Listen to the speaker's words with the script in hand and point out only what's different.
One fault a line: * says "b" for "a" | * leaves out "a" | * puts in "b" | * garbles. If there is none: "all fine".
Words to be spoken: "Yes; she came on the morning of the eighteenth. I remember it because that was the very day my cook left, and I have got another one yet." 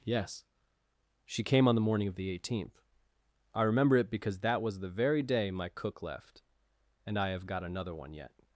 all fine